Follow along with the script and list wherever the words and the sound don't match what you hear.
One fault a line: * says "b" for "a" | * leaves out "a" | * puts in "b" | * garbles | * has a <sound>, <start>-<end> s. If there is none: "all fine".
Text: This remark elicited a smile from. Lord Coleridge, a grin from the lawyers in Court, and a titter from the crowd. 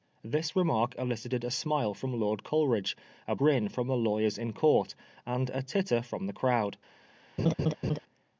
* has a laugh, 7.4-8.0 s